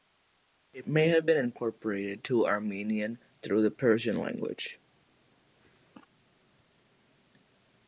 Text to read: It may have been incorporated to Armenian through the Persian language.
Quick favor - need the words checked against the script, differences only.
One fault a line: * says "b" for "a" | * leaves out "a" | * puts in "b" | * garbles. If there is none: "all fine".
all fine